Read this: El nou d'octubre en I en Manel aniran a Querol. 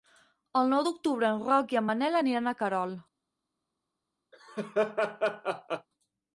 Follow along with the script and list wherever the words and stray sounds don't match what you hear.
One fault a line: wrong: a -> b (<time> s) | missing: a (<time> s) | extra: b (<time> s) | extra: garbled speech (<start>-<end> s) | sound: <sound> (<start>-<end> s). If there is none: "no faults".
extra: Roc (1.5 s)
sound: laugh (4.3-5.9 s)